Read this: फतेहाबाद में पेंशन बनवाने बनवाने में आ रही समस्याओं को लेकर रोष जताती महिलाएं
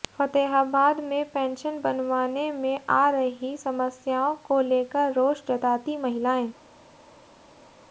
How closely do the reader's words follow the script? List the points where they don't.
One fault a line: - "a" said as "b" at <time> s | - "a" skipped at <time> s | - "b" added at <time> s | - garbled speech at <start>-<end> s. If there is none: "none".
- "बनवाने" skipped at 2.5 s